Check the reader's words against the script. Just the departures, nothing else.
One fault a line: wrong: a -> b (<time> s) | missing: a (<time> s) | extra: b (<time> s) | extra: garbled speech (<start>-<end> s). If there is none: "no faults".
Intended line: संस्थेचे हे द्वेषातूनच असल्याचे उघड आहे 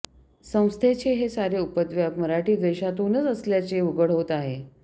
extra: सारे उपद्व्याप मराठी (1.3 s)
extra: होत (4.1 s)